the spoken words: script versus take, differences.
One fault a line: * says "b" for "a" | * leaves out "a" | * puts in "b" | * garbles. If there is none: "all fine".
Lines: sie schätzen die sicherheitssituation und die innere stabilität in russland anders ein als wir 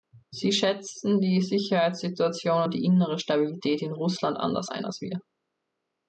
all fine